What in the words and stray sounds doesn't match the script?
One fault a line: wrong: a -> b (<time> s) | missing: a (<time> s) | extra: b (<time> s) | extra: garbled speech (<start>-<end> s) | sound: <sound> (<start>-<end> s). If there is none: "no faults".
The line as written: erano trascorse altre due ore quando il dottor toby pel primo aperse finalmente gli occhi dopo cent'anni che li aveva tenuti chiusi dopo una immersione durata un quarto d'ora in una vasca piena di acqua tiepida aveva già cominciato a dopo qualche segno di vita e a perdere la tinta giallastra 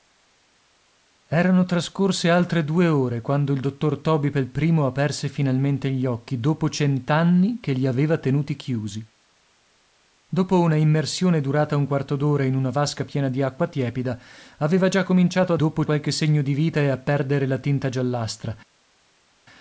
no faults